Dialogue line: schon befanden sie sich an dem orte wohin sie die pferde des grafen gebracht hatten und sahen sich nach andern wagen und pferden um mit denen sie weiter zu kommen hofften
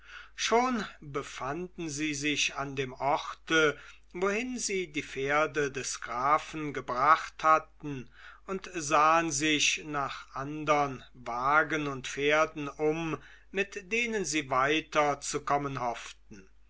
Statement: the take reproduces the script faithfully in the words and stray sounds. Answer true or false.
true